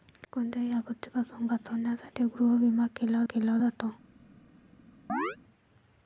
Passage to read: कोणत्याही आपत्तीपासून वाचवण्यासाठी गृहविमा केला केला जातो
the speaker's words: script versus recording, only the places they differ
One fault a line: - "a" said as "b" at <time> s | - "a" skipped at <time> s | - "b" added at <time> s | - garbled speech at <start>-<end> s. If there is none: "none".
none